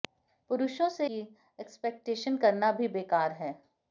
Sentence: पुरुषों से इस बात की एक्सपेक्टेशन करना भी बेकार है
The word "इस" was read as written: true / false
false